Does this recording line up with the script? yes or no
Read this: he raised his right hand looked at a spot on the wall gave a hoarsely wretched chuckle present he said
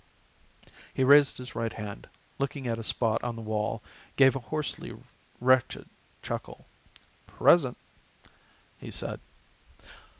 yes